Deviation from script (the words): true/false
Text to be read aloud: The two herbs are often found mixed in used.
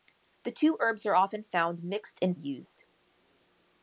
false